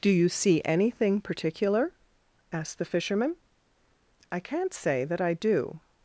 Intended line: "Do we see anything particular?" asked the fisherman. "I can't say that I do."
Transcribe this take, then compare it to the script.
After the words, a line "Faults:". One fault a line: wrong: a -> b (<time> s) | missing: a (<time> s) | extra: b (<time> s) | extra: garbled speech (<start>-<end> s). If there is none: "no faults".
"Do you see anything particular?" asked the fisherman. "I can't say that I do."
Faults:
wrong: we -> you (0.1 s)